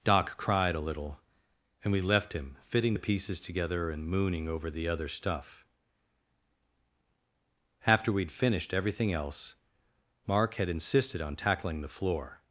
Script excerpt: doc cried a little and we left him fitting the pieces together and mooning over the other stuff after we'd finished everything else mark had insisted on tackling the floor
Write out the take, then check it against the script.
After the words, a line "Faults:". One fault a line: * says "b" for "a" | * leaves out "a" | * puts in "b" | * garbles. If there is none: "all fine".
doc cried a little and we left him fitting the pieces together and mooning over the other stuff after we'd finished everything else mark had insisted on tackling the floor
Faults:
all fine